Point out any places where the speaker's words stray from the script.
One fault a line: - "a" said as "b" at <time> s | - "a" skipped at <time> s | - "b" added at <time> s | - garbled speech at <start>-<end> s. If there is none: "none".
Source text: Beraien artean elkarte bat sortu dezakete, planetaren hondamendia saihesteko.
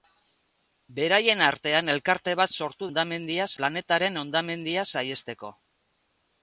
- "dezakete" said as "hondamendia" at 2.9 s